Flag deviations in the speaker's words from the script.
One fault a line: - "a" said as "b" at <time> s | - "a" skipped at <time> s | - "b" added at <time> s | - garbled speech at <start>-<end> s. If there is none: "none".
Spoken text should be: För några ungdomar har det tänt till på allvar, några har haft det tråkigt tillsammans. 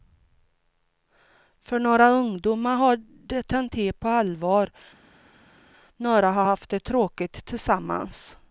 none